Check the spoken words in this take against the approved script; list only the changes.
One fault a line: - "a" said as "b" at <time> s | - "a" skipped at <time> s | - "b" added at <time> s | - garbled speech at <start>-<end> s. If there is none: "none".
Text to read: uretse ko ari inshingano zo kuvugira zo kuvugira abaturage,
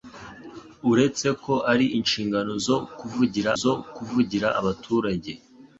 none